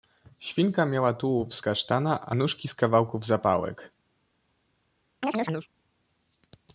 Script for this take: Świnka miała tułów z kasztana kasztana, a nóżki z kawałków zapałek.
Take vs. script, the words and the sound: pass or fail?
fail